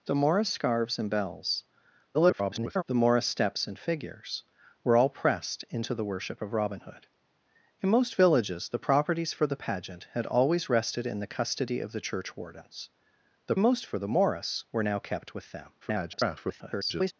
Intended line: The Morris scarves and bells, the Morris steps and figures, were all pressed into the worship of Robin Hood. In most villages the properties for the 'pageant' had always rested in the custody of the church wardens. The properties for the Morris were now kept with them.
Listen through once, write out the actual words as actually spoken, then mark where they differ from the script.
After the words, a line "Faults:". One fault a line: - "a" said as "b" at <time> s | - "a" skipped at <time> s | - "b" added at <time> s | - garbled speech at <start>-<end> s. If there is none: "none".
The Morris scarves and bells, [garbled] the Morris steps and figures, were all pressed into the worship of Robin Hood. In most villages the properties for the 'pageant' had always rested in the custody of the church wardens. The most for the Morris were now kept with them. [garbled]
Faults:
- garbled speech at 2.1-2.8 s
- "properties" said as "most" at 13.6 s
- garbled speech at 15.8-17.1 s